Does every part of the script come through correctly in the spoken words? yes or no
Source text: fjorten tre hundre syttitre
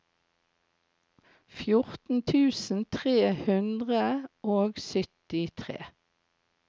no